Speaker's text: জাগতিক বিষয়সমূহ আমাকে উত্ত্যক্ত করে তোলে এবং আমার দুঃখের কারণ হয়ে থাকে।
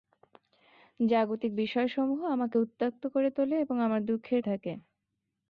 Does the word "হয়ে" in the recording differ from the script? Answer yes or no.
yes